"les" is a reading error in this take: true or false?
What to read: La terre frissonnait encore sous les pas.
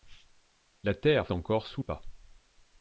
true